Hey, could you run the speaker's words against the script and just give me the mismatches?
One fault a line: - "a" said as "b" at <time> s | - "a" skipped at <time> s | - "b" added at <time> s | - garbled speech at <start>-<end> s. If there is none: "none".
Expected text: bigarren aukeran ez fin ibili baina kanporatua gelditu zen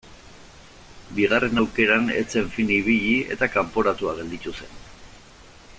- "zen" added at 2.4 s
- "baina" said as "eta" at 3.4 s